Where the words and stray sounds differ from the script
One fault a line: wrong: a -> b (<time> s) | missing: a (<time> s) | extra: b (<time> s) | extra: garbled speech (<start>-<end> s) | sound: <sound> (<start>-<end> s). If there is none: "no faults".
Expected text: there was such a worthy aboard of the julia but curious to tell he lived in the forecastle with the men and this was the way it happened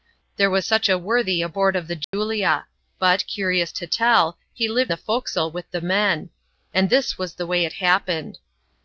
sound: dropout (2.0-2.1 s)
missing: in (4.9 s)